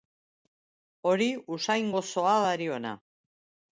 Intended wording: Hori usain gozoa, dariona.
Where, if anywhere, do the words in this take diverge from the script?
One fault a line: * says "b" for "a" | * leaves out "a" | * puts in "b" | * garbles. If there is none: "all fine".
all fine